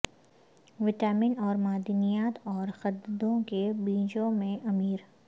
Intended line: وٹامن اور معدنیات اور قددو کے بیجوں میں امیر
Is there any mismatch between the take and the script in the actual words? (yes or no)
no